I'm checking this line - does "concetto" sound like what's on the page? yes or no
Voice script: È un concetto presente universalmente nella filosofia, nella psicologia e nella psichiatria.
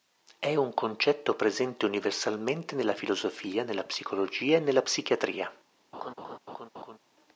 yes